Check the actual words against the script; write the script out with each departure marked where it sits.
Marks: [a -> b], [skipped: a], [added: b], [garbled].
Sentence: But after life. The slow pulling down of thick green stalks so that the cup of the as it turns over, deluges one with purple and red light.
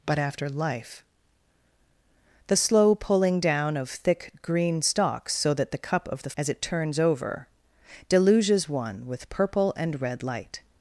But after life. The slow pulling down of thick green stalks so that the cup of the as it turns over, deluges one with purple and red light.